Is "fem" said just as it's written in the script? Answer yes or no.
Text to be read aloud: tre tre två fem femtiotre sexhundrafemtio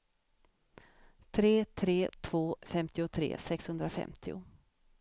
no